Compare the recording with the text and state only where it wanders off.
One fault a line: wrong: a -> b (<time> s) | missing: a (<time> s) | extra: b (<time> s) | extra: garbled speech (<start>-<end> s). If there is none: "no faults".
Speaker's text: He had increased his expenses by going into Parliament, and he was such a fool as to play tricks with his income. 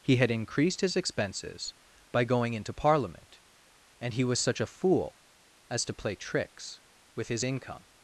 no faults